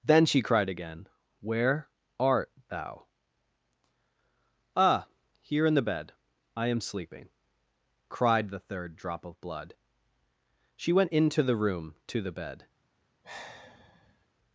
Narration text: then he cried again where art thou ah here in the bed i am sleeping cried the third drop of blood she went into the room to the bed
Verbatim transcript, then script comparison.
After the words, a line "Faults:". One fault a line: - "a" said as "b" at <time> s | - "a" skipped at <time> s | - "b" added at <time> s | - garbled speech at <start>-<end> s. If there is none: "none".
then she cried again where art thou ah here in the bed i am sleeping cried the third drop of blood she went into the room to the bed
Faults:
- "he" said as "she" at 0.2 s